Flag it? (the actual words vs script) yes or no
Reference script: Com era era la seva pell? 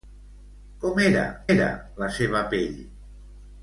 no